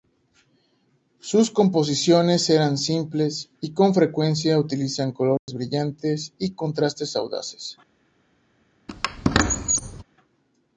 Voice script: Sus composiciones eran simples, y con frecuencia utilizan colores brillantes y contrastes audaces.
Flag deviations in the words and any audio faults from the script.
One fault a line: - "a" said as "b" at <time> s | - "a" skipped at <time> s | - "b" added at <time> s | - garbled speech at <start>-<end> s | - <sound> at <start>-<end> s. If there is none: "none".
- dropout at 5.4-5.5 s
- squeak at 8.9-10.0 s